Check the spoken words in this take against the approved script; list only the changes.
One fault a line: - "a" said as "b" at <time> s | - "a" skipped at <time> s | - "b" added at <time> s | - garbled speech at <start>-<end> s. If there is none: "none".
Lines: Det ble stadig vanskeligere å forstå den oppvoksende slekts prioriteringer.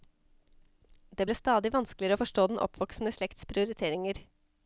none